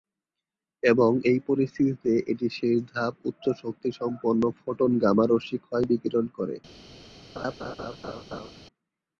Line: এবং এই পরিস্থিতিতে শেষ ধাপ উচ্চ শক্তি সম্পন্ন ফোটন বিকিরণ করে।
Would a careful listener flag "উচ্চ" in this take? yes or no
no